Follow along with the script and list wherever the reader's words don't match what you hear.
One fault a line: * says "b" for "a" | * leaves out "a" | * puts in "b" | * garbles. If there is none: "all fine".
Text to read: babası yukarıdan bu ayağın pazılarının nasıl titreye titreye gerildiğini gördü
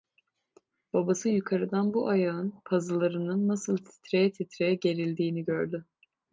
all fine